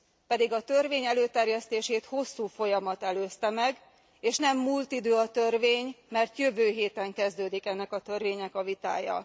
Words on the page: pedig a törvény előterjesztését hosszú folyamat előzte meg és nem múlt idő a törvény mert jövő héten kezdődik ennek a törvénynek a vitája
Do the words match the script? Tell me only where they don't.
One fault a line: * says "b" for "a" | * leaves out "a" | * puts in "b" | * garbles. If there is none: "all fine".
all fine